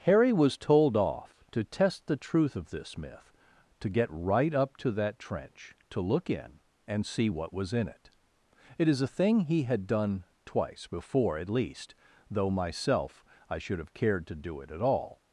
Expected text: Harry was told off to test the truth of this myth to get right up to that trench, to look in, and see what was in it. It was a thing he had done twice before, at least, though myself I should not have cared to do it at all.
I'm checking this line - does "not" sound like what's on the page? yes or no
no